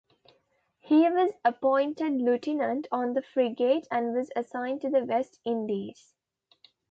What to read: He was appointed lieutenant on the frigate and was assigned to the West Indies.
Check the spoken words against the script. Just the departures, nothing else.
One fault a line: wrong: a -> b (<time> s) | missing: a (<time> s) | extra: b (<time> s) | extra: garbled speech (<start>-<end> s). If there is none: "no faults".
no faults